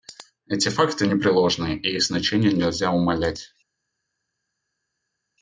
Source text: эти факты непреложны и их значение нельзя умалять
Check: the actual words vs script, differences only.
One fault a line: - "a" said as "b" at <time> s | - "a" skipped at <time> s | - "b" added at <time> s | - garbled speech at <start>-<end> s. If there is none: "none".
none